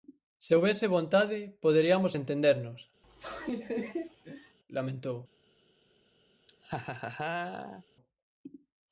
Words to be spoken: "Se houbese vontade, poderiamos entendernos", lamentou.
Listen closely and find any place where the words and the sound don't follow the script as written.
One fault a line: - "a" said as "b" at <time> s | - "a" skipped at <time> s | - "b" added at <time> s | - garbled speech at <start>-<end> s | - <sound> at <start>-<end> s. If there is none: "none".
- laugh at 3.0-4.6 s
- laugh at 6.5-7.8 s